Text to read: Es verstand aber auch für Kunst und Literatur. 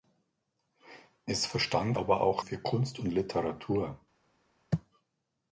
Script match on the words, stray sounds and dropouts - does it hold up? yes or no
yes